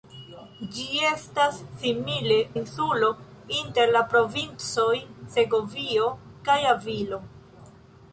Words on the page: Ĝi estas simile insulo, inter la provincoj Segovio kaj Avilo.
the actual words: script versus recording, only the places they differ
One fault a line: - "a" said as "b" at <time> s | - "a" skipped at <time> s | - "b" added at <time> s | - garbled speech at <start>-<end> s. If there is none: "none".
none